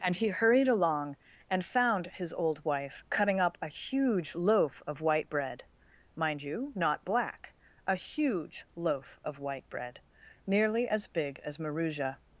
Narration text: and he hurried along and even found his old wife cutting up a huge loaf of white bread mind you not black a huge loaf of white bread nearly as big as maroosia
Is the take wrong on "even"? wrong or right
wrong